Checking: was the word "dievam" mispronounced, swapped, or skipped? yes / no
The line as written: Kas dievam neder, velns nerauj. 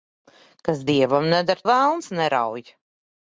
no